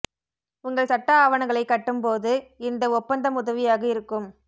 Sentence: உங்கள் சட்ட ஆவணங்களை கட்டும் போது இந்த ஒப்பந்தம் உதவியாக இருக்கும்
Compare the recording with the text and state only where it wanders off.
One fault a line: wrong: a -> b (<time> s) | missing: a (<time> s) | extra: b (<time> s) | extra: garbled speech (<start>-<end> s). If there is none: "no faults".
no faults